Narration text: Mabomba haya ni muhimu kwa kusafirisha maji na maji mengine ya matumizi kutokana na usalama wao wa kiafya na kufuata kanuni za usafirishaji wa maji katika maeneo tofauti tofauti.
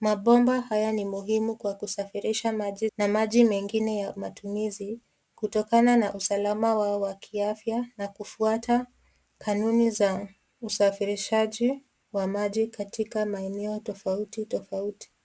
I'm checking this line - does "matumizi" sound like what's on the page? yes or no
yes